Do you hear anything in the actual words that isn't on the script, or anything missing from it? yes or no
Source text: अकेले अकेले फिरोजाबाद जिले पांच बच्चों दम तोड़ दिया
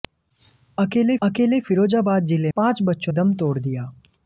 no